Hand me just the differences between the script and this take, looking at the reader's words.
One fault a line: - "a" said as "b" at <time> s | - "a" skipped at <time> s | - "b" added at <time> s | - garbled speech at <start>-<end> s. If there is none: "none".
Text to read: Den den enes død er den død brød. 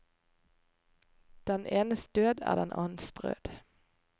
- "den" skipped at 1.6 s
- "død" said as "annens" at 2.7 s